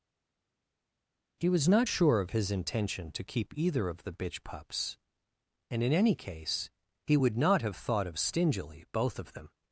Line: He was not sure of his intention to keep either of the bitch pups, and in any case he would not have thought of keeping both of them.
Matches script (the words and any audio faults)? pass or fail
fail